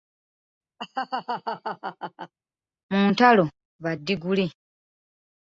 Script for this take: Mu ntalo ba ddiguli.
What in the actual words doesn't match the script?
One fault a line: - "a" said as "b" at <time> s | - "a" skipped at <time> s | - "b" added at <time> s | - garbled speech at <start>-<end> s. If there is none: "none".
none